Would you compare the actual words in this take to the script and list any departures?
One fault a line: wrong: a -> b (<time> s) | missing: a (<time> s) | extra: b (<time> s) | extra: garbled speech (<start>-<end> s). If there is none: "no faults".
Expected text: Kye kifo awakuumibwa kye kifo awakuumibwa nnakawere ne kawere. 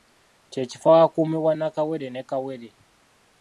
missing: kye kifo awakuumibwa (1.5 s)